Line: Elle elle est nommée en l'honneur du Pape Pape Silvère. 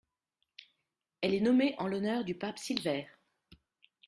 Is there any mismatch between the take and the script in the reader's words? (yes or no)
yes